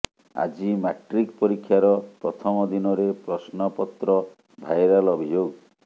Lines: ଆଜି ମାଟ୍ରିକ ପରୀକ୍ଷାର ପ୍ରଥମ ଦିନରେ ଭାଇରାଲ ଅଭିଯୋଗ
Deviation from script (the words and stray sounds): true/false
true